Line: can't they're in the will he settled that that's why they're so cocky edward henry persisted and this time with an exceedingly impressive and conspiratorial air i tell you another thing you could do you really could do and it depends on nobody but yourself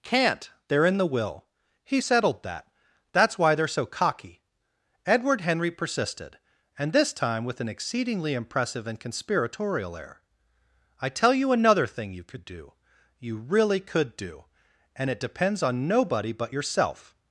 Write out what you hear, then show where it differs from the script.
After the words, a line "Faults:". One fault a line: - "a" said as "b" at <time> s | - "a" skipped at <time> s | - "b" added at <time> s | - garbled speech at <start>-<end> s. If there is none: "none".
can't they're in the will he settled that that's why they're so cocky edward henry persisted and this time with an exceedingly impressive and conspiratorial air i tell you another thing you could do you really could do and it depends on nobody but yourself
Faults:
none